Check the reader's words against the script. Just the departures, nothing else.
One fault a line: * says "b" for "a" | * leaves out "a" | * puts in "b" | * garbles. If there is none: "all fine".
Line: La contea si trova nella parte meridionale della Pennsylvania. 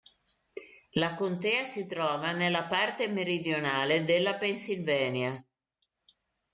all fine